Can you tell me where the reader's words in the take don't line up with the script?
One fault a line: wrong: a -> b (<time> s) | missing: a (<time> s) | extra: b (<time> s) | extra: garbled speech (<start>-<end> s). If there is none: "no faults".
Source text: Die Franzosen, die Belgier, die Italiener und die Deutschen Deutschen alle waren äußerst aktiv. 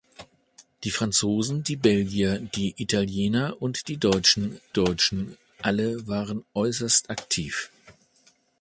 no faults